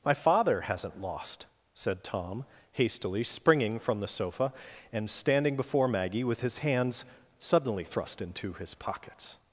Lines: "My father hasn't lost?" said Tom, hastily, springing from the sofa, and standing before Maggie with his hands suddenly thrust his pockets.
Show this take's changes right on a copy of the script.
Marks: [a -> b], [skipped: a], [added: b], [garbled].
"My father hasn't lost?" said Tom, hastily, springing from the sofa, and standing before Maggie with his hands suddenly thrust [added: into] his pockets.